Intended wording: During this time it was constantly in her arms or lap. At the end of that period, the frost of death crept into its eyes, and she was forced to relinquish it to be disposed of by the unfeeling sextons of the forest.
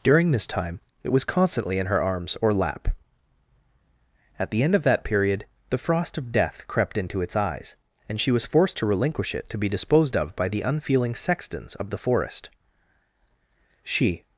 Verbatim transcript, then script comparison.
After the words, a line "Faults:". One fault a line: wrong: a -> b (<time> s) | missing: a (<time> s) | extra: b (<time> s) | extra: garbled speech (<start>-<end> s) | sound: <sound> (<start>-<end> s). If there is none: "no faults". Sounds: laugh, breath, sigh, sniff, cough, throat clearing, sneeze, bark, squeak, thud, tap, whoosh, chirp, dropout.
During this time it was constantly in her arms or lap. At the end of that period, the frost of death crept into its eyes, and she was forced to relinquish it to be disposed of by the unfeeling sextons of the forest. She
Faults:
extra: She (13.8 s)